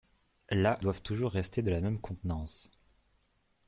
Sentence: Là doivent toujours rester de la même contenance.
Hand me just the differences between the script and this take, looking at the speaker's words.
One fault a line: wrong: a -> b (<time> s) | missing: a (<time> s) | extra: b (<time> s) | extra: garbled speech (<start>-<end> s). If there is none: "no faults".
no faults